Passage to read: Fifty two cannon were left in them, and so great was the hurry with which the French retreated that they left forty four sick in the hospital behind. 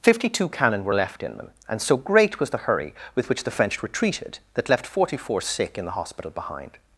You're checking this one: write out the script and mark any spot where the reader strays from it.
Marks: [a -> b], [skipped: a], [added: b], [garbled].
Fifty two cannon were left in them, and so great was the hurry with which the French retreated that [skipped: they] left forty four sick in the hospital behind.